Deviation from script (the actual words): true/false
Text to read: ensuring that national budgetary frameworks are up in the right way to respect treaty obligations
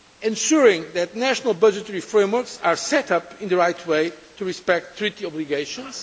true